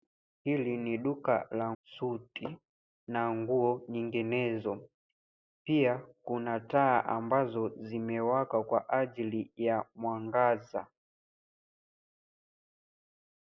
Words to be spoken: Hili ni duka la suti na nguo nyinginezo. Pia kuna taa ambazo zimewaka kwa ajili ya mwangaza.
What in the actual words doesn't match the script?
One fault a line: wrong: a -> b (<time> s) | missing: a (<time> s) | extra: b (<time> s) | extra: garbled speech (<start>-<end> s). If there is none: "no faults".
no faults